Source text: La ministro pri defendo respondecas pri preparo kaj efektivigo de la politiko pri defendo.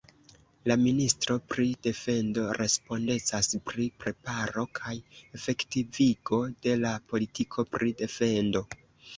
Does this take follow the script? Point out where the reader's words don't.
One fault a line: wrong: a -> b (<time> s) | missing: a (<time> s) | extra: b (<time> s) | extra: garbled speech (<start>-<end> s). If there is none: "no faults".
no faults